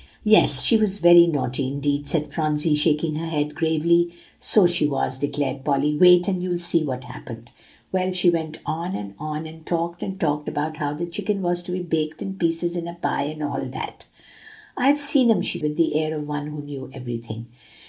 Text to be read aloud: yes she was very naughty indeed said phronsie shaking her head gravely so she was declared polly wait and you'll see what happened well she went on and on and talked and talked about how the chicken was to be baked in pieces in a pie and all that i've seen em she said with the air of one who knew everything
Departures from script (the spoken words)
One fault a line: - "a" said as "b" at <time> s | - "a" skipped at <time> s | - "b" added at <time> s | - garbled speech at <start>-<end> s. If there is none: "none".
- "said" skipped at 15.6 s